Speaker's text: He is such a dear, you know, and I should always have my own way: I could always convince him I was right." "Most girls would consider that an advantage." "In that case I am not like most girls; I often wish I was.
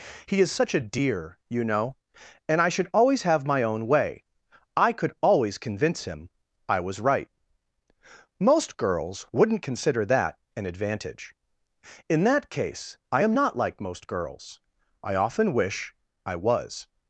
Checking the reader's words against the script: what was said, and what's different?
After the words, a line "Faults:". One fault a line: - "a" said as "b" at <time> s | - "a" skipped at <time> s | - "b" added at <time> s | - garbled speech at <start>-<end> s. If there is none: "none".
He is such a dear, you know, and I should always have my own way: I could always convince him I was right." "Most girls wouldn't consider that an advantage." "In that case I am not like most girls; I often wish I was.
Faults:
- "would" said as "wouldn't" at 9.3 s